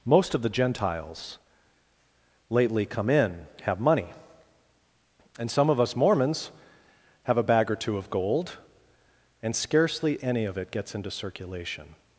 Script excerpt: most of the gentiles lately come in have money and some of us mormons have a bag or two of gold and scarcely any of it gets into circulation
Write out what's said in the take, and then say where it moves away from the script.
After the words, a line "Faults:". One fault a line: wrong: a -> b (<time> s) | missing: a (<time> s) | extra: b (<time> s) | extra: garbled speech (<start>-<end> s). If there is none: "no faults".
most of the gentiles lately come in have money and some of us mormons have a bag or two of gold and scarcely any of it gets into circulation
Faults:
no faults